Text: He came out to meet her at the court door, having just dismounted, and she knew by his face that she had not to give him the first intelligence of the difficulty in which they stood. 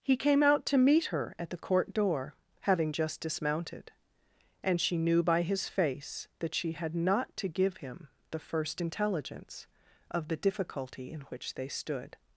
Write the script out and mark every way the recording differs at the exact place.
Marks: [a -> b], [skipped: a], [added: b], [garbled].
He came out to meet her at the court door, having just dismounted, and she knew by his face that she had not to give him the first intelligence of the difficulty in which they stood.